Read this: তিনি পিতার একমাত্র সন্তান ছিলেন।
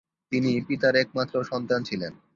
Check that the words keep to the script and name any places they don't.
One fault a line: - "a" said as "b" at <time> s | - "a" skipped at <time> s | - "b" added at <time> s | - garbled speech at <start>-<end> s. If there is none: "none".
none